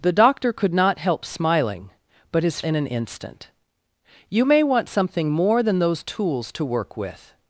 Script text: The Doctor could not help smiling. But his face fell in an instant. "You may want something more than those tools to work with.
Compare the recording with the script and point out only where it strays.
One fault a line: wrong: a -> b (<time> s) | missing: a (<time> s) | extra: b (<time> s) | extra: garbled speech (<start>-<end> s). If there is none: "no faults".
missing: face fell (2.6 s)